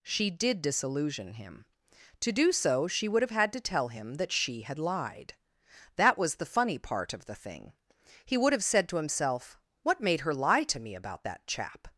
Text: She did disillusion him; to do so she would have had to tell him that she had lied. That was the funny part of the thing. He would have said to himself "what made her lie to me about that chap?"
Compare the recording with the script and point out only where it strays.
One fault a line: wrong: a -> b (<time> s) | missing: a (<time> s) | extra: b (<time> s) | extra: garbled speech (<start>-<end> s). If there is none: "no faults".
no faults